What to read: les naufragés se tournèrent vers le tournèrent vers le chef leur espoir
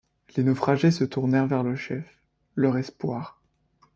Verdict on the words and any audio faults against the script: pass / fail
fail